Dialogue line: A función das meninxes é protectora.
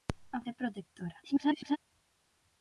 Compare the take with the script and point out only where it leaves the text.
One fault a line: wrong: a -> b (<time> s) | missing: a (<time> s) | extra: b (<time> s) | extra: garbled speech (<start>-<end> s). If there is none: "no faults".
missing: función das meninxes (0.4 s)
extra: garbled speech (1.2-1.8 s)